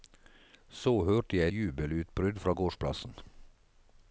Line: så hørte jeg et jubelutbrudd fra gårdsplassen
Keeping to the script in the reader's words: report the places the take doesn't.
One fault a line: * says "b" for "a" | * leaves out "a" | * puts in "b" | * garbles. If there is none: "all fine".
* leaves out "et"